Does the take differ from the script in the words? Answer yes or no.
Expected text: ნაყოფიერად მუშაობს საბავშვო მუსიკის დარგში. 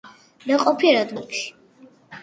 yes